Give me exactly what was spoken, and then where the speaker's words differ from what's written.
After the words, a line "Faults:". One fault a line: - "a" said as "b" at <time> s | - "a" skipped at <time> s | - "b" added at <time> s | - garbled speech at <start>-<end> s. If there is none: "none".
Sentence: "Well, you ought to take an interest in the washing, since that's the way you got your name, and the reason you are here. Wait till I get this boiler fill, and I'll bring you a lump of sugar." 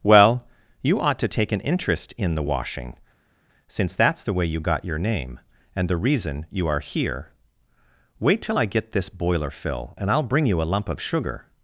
"Well, you ought to take an interest in the washing, since that's the way you got your name, and the reason you are here. Wait till I get this boiler fill, and I'll bring you a lump of sugar."
Faults:
none